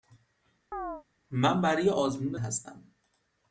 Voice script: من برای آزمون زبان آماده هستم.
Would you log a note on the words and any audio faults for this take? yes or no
yes